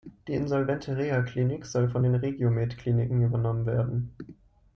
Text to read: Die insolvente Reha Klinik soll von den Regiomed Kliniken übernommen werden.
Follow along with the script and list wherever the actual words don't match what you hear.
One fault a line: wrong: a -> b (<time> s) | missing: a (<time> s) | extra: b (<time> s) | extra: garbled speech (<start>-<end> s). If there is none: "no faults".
no faults